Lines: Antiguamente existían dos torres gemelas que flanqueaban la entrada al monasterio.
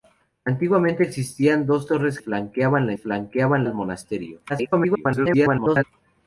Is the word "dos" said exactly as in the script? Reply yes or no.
yes